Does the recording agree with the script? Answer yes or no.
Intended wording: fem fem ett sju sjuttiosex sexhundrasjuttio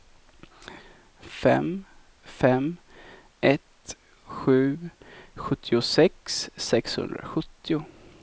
yes